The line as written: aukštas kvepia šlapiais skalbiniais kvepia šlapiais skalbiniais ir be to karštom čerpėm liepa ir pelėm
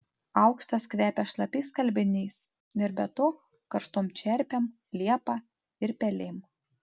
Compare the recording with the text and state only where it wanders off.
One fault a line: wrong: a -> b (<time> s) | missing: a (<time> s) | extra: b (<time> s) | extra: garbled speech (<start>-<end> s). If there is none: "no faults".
missing: kvepia šlapiais skalbiniais (2.4 s)